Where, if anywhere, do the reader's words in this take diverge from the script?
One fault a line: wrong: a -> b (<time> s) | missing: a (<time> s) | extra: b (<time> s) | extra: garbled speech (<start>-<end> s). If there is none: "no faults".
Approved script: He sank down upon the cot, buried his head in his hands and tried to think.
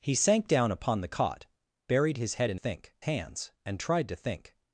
wrong: his -> think (2.5 s)